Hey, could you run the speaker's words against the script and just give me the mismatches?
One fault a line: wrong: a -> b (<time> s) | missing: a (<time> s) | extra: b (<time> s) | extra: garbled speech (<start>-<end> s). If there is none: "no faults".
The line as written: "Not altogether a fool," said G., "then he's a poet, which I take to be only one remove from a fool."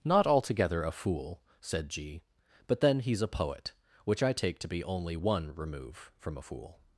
extra: but (2.7 s)